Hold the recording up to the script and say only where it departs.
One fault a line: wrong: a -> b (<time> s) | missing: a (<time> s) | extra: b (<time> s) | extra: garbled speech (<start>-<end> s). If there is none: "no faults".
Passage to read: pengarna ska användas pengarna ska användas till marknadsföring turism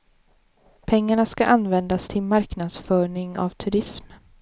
missing: pengarna ska användas (2.1 s)
extra: av (3.3 s)